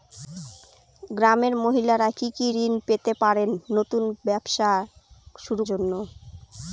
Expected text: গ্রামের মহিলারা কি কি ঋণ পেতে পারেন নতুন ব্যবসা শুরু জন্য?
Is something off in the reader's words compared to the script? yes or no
no